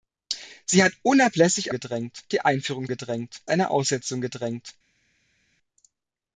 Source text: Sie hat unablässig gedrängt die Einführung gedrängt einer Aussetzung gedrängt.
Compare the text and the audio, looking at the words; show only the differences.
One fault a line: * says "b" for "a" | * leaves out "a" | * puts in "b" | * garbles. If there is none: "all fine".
all fine